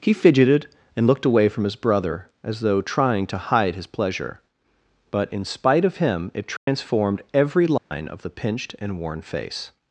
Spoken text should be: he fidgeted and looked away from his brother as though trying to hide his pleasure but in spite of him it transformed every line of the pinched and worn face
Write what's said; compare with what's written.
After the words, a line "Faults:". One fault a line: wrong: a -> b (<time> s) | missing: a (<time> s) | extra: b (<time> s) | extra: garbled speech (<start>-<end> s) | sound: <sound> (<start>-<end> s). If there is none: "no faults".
he fidgeted and looked away from his brother as though trying to hide his pleasure but in spite of him it transformed every line of the pinched and worn face
Faults:
sound: dropout (6.6-6.7 s)
sound: dropout (7.8-7.9 s)